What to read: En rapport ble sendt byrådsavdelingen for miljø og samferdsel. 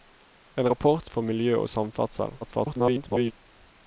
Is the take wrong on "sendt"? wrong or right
wrong